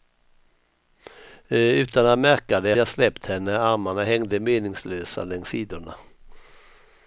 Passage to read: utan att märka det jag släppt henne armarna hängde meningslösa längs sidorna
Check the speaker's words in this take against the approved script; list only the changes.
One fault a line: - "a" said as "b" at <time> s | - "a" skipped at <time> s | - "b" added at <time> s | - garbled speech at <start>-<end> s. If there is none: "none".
none